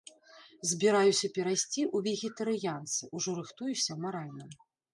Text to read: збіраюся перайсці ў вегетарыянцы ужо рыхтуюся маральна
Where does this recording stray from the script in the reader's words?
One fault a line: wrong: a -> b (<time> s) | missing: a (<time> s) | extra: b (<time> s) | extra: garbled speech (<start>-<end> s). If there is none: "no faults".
no faults